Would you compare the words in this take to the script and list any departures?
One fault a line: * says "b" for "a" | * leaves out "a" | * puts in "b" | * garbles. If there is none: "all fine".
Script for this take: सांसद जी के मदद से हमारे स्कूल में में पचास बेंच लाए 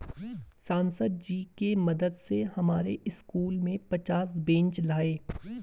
* leaves out "में"